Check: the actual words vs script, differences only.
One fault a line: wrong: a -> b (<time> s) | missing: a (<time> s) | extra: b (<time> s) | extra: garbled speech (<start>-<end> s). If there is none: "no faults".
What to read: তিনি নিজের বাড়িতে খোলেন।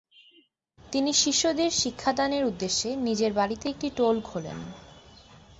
extra: শিষ্যদের শিক্ষাদানের উদ্দেশ্যে (1.1 s)
extra: একটি টোল (3.7 s)